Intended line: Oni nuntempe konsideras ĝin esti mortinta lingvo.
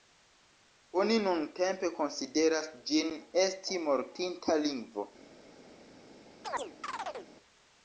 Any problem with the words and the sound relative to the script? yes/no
yes